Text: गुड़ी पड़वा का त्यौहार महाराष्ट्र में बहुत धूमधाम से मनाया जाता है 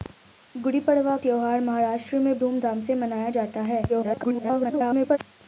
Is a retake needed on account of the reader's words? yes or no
yes